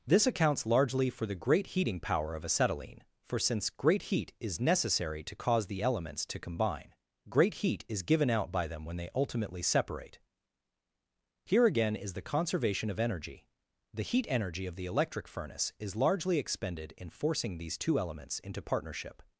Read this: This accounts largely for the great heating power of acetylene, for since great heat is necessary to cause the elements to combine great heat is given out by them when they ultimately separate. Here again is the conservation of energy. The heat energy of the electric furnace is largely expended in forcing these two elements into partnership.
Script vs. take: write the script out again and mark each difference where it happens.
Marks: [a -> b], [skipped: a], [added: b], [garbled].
This accounts largely for the great heating power of acetylene, for since great heat is necessary to cause the elements to combine great heat is given out by them when they ultimately separate. Here again is the conservation of energy. The heat energy of the electric furnace is largely expended in forcing these two elements into partnership.